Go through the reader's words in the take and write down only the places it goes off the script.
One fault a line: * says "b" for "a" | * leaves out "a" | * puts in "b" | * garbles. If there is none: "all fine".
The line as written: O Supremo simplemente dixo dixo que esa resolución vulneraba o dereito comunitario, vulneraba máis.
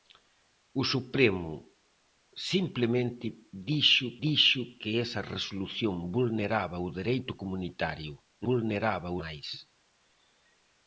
all fine